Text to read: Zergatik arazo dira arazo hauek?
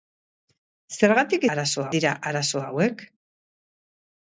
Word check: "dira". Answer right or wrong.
right